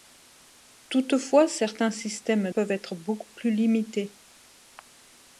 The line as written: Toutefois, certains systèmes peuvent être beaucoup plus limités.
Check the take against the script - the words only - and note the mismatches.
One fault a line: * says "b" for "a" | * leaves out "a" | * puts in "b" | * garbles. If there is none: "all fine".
all fine